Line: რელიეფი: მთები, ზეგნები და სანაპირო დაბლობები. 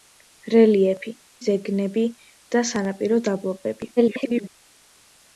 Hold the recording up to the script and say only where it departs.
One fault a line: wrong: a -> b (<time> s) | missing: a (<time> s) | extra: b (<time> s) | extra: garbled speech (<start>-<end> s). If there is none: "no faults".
missing: მთები (1.1 s)
extra: garbled speech (4.0-4.5 s)